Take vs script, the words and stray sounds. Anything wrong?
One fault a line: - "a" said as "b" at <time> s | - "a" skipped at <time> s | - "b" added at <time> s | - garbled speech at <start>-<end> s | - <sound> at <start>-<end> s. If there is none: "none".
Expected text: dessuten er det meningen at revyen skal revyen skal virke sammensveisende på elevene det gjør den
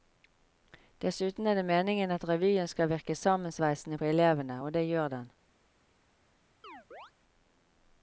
- "revyen skal" skipped at 2.9 s
- "og" added at 4.6 s
- chirp at 6.6-7.1 s